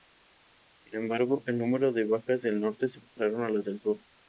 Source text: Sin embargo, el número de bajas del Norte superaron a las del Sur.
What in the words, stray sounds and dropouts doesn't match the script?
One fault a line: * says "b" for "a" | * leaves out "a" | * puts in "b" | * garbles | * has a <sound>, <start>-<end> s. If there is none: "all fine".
* has a dropout, 3.1-3.2 s